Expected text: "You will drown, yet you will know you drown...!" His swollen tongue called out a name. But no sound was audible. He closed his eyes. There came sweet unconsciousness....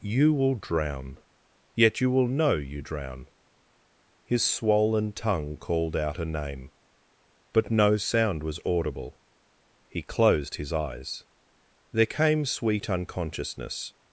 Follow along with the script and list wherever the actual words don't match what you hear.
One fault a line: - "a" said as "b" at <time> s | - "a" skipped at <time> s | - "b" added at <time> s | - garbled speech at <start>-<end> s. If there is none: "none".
none